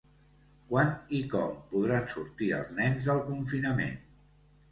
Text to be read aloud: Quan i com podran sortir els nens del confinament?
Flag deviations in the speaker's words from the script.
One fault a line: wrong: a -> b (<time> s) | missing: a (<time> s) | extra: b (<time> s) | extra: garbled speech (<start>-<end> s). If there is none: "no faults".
no faults